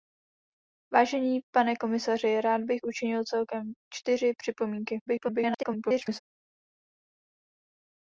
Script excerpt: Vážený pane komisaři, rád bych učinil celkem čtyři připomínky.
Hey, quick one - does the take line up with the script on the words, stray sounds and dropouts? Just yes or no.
no